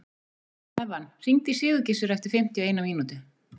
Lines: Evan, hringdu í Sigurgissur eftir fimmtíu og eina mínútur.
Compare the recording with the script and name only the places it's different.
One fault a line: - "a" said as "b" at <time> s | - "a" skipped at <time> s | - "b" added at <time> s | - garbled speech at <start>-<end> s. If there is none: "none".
none